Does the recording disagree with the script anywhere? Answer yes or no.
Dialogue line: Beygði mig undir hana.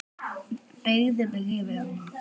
yes